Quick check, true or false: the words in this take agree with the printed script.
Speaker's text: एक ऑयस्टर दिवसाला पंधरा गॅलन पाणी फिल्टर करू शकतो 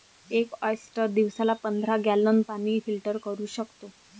true